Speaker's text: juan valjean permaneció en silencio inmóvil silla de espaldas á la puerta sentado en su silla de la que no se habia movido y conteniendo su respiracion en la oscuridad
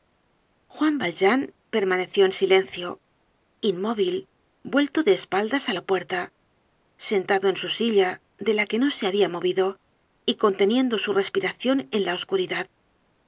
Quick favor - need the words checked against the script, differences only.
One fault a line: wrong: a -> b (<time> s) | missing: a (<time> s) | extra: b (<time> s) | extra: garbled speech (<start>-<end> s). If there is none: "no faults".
wrong: silla -> vuelto (4.7 s)